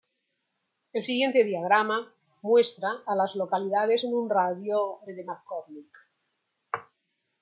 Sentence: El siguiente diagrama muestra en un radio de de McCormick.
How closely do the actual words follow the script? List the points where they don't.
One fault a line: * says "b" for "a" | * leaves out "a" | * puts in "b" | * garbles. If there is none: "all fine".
* puts in "a las localidades"